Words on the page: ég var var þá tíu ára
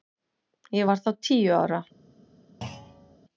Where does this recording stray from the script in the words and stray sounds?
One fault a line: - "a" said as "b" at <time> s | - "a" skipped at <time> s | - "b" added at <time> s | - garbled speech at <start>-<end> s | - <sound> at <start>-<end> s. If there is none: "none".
- "var" skipped at 1.0 s
- thud at 2.6-3.2 s